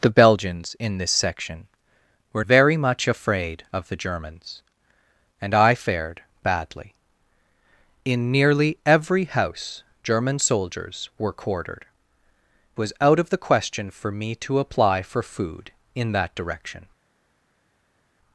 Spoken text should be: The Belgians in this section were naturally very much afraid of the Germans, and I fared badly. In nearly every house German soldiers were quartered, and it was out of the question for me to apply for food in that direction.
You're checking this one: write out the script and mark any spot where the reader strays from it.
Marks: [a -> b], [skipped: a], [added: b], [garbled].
The Belgians in this section were [skipped: naturally] very much afraid of the Germans, and I fared badly. In nearly every house German soldiers were quartered, [skipped: and it] was out of the question for me to apply for food in that direction.